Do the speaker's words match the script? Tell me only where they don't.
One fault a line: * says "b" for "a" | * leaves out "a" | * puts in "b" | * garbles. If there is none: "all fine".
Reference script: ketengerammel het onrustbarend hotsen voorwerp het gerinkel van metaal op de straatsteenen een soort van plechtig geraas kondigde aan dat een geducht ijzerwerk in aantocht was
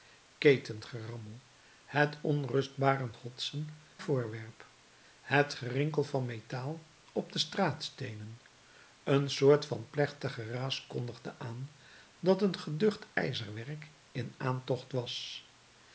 all fine